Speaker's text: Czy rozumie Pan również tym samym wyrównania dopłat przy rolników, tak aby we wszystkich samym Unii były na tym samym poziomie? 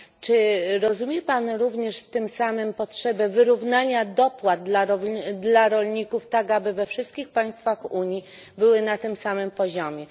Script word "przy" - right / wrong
wrong